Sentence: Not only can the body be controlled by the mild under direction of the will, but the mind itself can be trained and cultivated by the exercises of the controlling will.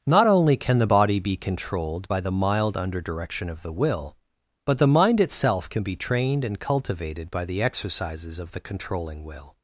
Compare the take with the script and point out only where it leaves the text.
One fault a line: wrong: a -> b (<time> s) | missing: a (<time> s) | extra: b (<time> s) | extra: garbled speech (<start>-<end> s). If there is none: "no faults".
no faults